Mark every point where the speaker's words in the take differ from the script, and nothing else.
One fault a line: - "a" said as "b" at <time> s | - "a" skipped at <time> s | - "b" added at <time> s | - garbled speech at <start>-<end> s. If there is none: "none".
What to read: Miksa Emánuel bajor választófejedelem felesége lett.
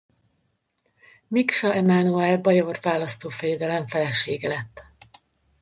none